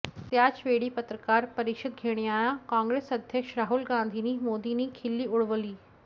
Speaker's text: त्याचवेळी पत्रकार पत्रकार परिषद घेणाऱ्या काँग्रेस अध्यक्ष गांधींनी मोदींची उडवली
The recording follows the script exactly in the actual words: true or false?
false